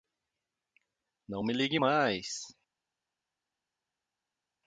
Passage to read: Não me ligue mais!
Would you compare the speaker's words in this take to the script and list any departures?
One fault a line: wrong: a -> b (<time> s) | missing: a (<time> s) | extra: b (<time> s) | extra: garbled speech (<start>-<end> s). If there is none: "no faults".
no faults